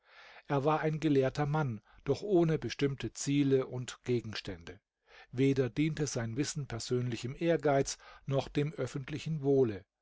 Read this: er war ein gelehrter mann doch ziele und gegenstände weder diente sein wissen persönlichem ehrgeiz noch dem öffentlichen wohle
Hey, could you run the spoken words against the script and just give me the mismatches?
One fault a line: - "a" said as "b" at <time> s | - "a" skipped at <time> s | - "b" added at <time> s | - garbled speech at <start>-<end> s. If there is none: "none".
- "ohne bestimmte" added at 2.2 s